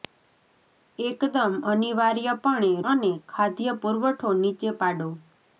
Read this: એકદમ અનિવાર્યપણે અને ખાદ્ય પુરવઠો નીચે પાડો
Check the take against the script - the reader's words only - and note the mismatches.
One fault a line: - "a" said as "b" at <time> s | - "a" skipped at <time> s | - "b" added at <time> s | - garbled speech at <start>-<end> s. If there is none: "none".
none